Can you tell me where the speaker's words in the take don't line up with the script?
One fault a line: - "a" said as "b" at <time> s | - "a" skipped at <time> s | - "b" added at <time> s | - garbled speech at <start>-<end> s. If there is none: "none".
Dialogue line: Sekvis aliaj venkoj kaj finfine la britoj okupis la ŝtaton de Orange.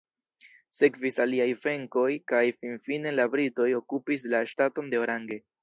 none